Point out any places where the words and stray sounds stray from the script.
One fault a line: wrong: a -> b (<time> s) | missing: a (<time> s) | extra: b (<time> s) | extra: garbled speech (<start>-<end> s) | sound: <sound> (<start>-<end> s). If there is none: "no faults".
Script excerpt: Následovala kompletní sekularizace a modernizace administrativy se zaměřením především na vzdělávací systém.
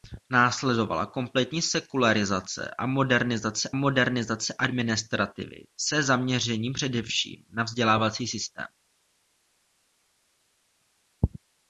extra: modernizace (3.7 s)